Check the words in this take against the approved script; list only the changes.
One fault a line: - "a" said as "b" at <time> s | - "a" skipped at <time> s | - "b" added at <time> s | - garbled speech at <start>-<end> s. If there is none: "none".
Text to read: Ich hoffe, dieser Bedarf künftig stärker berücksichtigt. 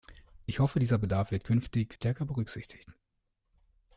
- "wird" added at 1.3 s